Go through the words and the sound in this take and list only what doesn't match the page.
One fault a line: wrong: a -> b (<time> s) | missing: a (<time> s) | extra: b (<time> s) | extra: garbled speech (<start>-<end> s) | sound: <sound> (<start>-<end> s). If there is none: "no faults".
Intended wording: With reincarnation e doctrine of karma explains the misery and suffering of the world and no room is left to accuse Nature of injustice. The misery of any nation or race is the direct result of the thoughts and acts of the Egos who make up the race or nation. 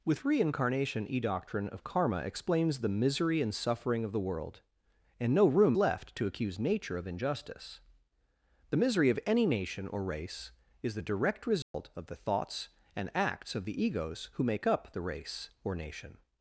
missing: is (5.8 s)
sound: dropout (11.6-11.7 s)